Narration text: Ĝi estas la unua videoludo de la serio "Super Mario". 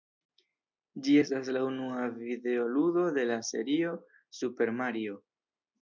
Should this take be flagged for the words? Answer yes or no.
no